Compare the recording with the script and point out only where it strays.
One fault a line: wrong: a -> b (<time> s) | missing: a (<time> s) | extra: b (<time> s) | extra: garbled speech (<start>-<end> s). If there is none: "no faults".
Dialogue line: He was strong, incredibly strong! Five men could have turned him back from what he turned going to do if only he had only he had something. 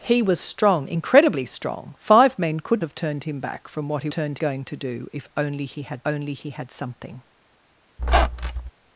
no faults